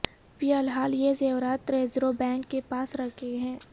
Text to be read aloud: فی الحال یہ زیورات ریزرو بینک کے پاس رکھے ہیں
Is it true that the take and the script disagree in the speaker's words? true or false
false